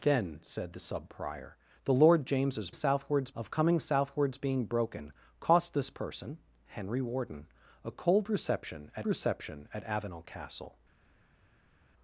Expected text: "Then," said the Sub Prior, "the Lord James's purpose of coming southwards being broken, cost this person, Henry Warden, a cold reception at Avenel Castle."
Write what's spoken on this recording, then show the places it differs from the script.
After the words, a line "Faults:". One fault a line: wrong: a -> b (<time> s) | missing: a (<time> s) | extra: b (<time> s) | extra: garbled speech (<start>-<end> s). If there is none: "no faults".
"Then," said the Sub Prior, "the Lord James's southwards of coming southwards being broken, cost this person, Henry Warden, a cold reception at reception at Avenel Castle."
Faults:
wrong: purpose -> southwards (2.7 s)
extra: reception at (9.0 s)